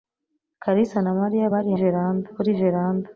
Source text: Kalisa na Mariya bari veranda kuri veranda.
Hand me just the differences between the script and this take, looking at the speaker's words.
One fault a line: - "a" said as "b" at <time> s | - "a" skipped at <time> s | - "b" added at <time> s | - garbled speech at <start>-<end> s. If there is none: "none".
none